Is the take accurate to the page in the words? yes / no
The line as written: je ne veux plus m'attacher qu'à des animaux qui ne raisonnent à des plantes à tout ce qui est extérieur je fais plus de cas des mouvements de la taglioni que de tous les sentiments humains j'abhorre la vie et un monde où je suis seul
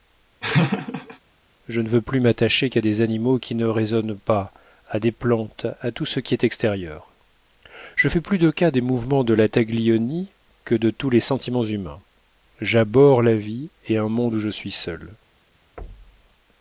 no